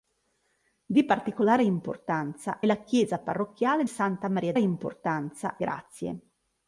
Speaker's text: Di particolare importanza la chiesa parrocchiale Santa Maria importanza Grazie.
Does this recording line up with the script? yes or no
yes